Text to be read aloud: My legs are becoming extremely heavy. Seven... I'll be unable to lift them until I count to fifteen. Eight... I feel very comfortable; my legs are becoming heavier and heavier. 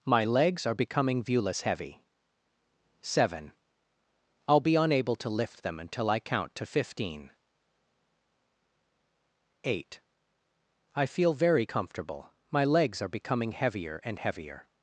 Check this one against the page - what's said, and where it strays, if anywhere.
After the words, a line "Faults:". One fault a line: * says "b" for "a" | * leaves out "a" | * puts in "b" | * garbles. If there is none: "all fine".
My legs are becoming viewless heavy. Seven... I'll be unable to lift them until I count to fifteen. Eight... I feel very comfortable; my legs are becoming heavier and heavier.
Faults:
* says "viewless" for "extremely"